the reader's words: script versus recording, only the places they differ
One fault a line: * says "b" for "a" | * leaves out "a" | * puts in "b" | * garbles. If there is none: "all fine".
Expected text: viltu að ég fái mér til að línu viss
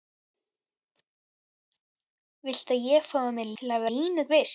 all fine